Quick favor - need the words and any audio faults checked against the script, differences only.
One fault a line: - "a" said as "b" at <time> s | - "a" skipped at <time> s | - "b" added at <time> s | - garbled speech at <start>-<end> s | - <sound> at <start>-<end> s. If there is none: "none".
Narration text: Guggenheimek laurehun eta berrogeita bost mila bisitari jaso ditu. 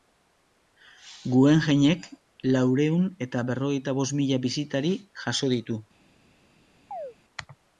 - chirp at 6.9-7.1 s